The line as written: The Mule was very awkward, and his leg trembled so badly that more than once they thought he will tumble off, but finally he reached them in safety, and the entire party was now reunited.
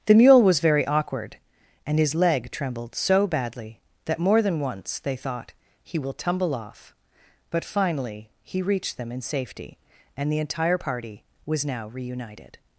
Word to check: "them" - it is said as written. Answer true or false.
true